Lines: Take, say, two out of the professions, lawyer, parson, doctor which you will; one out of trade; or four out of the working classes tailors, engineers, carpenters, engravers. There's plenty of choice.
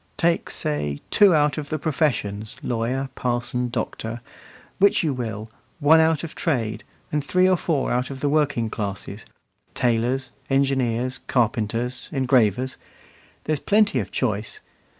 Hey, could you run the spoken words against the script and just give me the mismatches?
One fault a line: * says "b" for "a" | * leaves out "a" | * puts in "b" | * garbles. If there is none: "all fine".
* puts in "and three"